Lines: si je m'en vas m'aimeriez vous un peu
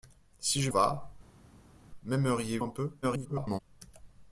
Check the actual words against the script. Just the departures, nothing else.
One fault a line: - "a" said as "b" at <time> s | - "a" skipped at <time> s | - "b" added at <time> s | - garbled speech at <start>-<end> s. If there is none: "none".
- "m'en" skipped at 0.7 s
- "vous" skipped at 2.6 s
- garbled speech at 3.0-3.6 s